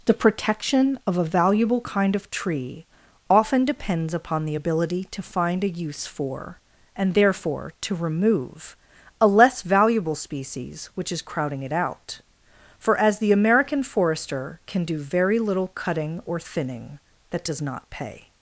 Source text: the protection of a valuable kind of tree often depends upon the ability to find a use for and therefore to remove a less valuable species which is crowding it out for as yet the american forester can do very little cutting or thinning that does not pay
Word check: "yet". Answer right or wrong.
wrong